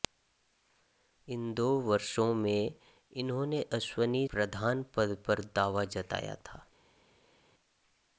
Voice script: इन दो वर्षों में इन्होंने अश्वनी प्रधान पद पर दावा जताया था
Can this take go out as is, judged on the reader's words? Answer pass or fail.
pass